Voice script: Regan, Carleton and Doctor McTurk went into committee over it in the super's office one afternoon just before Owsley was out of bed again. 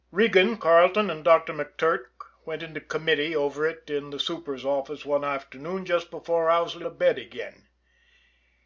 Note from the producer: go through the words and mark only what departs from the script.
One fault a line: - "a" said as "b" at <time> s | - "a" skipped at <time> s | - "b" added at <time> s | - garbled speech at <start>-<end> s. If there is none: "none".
- "was out" skipped at 6.8 s